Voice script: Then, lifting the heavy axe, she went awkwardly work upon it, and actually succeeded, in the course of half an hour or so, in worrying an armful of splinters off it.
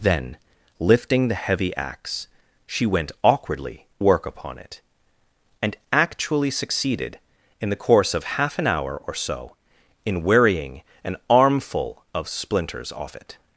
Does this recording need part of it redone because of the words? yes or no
no